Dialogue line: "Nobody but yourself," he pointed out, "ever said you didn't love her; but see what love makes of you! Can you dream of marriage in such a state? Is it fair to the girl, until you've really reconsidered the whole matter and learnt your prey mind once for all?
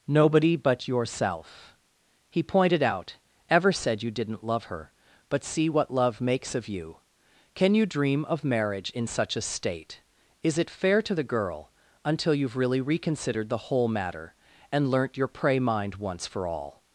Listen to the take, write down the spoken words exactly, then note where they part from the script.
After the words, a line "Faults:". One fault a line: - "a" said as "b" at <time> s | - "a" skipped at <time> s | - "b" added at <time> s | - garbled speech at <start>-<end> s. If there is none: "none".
"Nobody but yourself," he pointed out, "ever said you didn't love her; but see what love makes of you! Can you dream of marriage in such a state? Is it fair to the girl, until you've really reconsidered the whole matter and learnt your prey mind once for all?
Faults:
none